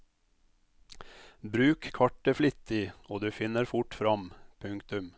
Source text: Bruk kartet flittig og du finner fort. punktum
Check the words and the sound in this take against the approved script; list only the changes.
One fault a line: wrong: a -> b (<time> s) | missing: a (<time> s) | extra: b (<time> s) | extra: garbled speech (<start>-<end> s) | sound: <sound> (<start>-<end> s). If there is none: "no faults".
extra: fram (4.0 s)